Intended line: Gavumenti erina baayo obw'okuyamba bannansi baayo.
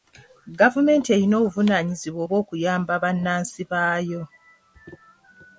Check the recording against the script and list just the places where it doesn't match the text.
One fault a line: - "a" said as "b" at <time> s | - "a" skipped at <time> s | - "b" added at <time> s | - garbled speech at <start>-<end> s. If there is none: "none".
- "baayo" said as "obuvunaanyizibwa" at 1.4 s